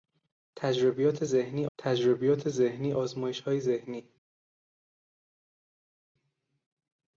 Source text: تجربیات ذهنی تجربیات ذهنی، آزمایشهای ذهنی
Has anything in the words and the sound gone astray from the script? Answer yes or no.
no